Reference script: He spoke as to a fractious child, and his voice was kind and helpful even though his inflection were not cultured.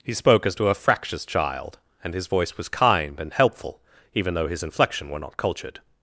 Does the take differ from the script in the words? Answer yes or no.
no